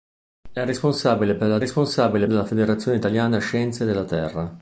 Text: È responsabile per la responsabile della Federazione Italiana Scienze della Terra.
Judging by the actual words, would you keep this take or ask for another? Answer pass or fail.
pass